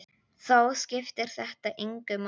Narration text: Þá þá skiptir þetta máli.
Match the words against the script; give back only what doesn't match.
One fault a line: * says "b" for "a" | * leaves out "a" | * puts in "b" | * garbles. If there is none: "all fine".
* leaves out "þá"
* puts in "engu"